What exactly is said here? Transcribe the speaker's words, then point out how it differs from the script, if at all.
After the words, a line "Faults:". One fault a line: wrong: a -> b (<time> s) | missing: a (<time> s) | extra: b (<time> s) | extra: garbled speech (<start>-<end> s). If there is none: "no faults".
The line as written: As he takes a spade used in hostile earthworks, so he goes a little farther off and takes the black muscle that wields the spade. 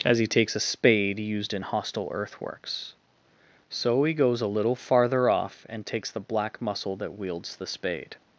As he takes a spade used in hostile earthworks, so he goes a little farther off and takes the black muscle that wields the spade.
Faults:
no faults